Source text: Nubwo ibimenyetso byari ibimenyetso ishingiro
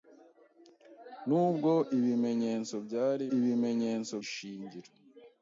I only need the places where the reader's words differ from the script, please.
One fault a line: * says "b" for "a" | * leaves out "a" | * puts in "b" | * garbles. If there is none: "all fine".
all fine